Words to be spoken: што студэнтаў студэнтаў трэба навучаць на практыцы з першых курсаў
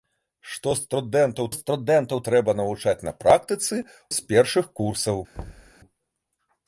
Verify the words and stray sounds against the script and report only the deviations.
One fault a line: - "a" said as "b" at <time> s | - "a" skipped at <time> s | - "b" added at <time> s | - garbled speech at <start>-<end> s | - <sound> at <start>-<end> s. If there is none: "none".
- thud at 5.4-5.7 s